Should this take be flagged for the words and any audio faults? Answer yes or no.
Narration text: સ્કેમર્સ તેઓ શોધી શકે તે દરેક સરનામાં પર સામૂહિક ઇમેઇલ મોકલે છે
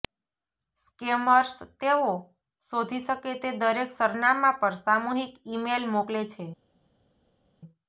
no